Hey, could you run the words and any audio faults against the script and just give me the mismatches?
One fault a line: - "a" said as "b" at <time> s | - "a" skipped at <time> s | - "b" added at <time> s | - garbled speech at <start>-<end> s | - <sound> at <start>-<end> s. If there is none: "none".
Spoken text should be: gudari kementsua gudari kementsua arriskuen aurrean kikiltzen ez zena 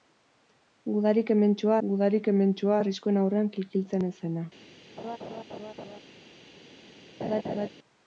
- laugh at 5.0-6.0 s
- laugh at 7.2-7.7 s